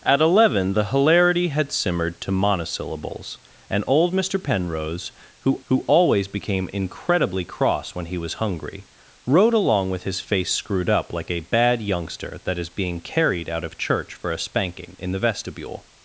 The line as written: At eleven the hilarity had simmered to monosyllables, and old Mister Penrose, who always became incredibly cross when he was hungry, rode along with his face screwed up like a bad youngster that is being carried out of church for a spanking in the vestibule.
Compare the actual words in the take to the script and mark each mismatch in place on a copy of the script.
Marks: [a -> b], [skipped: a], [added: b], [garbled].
At eleven the hilarity had simmered to monosyllables, and old Mister Penrose, who [added: who] always became incredibly cross when he was hungry, rode along with his face screwed up like a bad youngster that is being carried out of church for a spanking in the vestibule.